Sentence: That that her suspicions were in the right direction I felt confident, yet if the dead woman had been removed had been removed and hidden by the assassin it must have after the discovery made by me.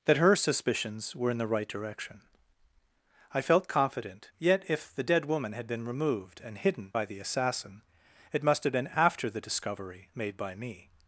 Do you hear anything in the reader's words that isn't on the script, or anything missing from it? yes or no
yes